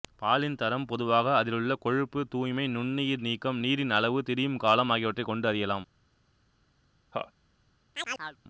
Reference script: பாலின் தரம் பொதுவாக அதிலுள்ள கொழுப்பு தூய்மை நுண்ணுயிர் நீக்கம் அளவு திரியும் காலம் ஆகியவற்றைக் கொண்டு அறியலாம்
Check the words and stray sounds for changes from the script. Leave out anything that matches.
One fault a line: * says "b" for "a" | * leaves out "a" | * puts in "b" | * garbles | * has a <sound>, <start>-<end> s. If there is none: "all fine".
* puts in "நீரின்"
* has a laugh, 7.1-7.3 s
* has a chirp, 7.9-8.4 s